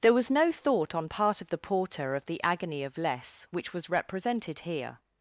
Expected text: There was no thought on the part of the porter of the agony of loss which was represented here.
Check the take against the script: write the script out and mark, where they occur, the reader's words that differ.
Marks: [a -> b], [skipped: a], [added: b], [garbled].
There was no thought on [skipped: the] part of the porter of the agony of [loss -> less] which was represented here.